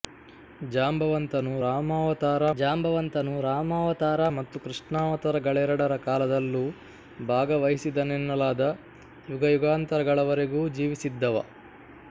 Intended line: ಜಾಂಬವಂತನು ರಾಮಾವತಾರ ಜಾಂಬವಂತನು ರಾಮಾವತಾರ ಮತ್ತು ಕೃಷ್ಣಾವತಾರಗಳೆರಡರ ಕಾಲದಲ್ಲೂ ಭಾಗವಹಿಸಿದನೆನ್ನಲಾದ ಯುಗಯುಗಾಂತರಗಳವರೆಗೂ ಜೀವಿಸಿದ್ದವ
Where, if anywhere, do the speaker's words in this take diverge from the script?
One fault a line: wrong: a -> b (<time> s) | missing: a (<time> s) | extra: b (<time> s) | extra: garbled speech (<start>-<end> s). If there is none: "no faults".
no faults